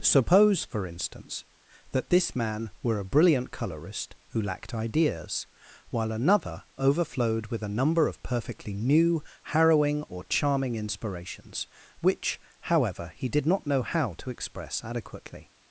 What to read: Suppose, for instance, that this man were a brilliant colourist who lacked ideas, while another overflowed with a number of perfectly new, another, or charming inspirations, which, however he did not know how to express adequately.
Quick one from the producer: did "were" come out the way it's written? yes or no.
yes